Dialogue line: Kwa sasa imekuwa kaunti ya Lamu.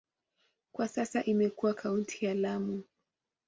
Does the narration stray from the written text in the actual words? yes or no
no